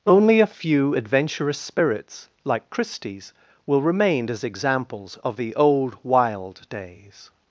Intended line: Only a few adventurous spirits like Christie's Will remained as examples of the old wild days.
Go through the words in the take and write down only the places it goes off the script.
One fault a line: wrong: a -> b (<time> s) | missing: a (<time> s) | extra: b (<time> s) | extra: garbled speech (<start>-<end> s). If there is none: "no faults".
wrong: remained -> remain (3.8 s)